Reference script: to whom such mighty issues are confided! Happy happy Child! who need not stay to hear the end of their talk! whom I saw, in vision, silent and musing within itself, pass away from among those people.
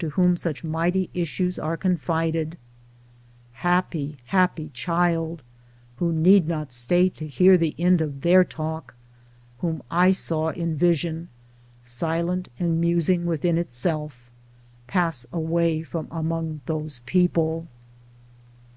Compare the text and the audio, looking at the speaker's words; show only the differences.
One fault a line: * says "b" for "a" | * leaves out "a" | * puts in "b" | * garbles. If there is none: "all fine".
all fine